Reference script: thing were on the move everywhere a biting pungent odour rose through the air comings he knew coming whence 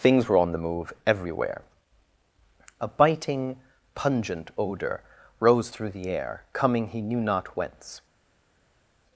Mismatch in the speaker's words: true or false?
true